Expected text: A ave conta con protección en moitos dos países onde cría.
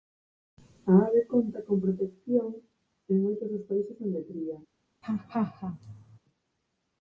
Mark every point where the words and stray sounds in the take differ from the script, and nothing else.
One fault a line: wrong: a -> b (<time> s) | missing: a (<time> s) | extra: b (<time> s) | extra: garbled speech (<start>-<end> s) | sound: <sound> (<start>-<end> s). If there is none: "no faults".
sound: laugh (5.0-6.2 s)